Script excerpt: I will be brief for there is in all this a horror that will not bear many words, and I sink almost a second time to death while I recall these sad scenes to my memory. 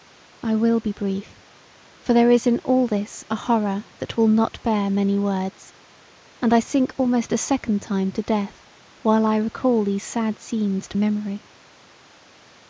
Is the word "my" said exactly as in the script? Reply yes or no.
no